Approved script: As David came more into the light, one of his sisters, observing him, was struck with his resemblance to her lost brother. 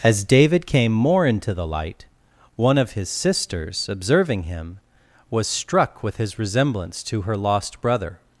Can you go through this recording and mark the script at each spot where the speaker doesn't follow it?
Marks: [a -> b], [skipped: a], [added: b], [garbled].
As David came more into the light, one of his sisters, observing him, was struck with his resemblance to her lost brother.